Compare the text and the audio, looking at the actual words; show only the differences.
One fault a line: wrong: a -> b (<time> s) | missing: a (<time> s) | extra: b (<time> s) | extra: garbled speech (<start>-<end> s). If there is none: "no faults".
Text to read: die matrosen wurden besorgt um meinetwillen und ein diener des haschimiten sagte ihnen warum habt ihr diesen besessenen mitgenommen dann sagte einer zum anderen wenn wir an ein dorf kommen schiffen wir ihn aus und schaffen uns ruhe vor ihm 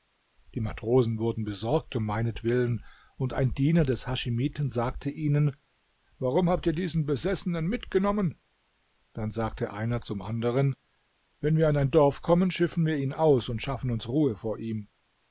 no faults